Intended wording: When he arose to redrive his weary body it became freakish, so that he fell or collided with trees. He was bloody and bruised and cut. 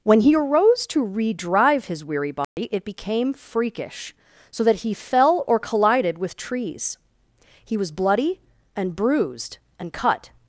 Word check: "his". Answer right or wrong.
right